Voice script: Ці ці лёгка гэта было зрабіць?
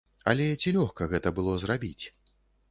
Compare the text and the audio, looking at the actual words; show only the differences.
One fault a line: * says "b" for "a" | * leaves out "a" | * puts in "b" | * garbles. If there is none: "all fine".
* says "Але" for "Ці"